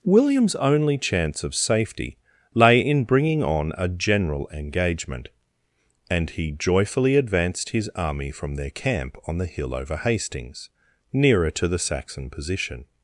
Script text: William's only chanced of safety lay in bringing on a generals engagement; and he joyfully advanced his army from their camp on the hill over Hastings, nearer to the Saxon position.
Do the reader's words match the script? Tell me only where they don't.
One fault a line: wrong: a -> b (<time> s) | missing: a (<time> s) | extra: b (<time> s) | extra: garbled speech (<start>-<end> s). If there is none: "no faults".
wrong: chanced -> chance (1.0 s)
wrong: generals -> general (3.9 s)